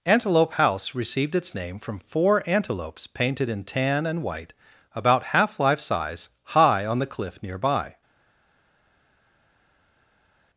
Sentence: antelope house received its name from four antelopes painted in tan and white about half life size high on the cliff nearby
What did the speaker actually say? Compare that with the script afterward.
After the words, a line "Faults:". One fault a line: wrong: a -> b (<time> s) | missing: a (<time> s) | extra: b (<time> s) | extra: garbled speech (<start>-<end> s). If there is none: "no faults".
antelope house received its name from four antelopes painted in tan and white about half life size high on the cliff nearby
Faults:
no faults